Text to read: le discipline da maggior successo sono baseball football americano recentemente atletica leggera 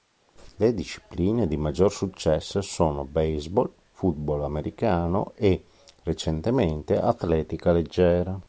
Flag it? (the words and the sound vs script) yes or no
yes